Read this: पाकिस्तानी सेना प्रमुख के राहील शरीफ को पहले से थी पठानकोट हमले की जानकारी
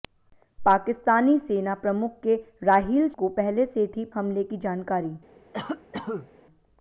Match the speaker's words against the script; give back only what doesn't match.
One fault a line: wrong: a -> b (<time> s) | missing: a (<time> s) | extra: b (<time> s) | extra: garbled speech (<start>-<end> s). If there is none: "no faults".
missing: शरीफ (3.1 s)
missing: पठानकोट (4.0 s)